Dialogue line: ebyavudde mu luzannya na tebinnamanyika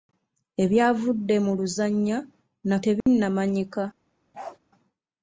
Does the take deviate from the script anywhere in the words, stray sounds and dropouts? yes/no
yes